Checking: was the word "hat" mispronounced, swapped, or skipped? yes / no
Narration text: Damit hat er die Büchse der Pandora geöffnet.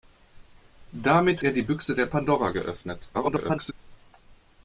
yes